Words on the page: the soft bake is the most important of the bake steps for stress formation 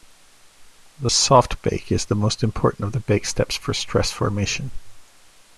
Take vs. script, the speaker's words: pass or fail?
pass